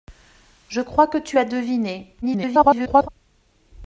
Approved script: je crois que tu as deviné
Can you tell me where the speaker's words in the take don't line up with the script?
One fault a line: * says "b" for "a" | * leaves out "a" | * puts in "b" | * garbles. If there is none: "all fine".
* garbles